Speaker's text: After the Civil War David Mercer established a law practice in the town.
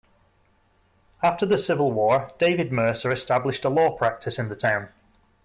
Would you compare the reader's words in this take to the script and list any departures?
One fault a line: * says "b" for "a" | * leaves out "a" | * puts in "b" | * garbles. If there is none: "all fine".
all fine